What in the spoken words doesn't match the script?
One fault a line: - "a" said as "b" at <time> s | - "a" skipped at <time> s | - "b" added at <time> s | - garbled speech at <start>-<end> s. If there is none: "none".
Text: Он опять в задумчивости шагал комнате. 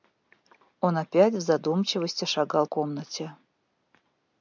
none